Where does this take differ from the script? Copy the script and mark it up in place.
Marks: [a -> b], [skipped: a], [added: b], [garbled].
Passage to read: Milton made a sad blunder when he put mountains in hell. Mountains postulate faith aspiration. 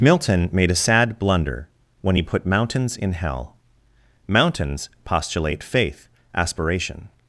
Milton made a sad blunder when he put mountains in hell. Mountains postulate faith aspiration.